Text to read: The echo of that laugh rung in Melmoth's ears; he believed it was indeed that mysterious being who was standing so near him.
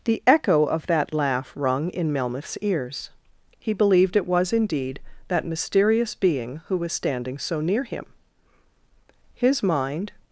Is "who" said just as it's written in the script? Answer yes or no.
yes